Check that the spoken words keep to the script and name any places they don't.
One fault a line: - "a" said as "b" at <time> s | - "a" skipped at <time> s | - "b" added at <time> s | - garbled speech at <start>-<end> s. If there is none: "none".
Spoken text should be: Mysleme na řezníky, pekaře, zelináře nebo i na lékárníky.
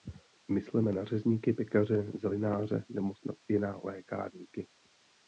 - "snad" added at 3.1 s